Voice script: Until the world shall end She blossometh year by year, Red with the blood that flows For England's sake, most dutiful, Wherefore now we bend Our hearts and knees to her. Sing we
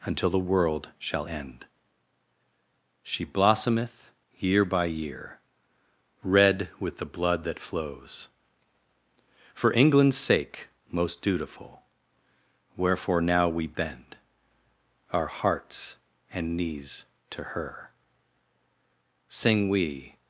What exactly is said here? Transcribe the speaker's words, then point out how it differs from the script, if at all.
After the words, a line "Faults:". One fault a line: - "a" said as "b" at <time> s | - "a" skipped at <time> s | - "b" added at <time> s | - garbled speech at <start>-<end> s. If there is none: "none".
Until the world shall end She blossometh year by year, Red with the blood that flows For England's sake, most dutiful, Wherefore now we bend Our hearts and knees to her. Sing we
Faults:
none